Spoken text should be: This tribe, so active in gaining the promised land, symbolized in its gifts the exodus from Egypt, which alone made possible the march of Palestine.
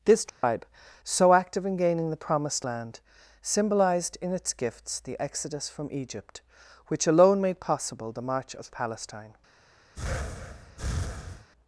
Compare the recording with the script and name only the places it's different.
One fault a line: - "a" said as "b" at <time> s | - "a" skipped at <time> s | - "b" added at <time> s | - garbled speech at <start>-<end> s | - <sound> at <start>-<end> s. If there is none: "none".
- dropout at 0.3-0.4 s
- breath at 9.9-11.5 s